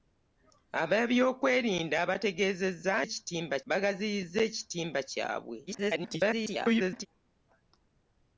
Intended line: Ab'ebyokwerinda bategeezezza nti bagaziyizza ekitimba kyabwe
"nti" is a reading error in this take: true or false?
true